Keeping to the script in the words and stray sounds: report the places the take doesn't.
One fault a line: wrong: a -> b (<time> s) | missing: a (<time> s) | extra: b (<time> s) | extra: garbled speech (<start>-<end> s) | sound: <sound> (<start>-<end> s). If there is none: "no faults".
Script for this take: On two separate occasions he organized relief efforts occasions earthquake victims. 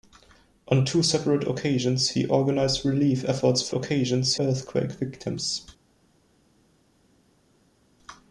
no faults